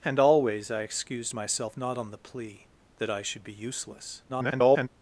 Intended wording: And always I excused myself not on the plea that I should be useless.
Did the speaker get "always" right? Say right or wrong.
right